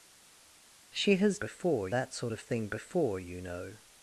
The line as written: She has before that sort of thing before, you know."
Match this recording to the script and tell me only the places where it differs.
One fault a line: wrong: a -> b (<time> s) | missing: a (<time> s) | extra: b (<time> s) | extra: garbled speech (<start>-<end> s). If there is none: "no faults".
no faults